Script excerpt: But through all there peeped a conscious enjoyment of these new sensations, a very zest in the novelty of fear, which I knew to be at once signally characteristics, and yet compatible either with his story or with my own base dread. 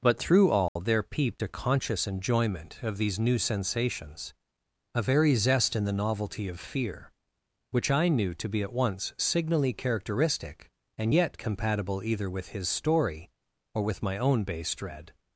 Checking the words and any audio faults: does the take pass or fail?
fail